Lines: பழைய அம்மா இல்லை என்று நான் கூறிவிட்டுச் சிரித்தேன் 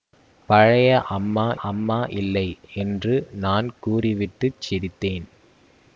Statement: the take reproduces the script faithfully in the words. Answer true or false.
false